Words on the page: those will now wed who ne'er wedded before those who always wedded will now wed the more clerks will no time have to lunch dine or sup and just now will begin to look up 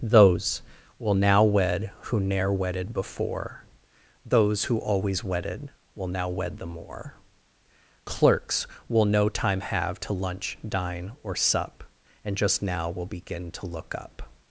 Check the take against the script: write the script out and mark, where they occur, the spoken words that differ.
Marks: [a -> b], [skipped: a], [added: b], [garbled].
those will now wed who ne'er wedded before those who always wedded will now wed the more clerks will no time have to lunch dine or sup and just now will begin to look up